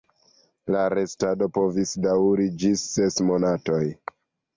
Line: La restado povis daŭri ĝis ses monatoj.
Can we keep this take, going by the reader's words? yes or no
yes